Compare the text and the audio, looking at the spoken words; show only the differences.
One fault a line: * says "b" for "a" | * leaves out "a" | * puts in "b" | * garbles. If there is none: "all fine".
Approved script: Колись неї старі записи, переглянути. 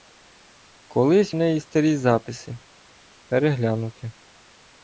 all fine